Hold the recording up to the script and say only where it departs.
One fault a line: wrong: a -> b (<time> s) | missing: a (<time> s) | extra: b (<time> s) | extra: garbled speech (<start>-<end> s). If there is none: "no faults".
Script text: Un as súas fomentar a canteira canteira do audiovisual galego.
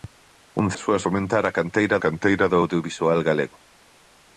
no faults